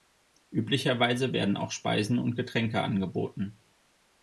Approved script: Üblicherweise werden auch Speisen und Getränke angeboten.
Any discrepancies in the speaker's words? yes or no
no